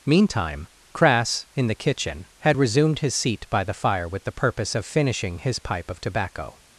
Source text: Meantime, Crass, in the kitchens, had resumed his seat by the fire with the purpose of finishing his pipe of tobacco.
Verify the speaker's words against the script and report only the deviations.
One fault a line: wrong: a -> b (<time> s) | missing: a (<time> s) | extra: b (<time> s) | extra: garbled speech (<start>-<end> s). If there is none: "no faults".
wrong: kitchens -> kitchen (1.8 s)